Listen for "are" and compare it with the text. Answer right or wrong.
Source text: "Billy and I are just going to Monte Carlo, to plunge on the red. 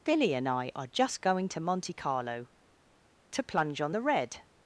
right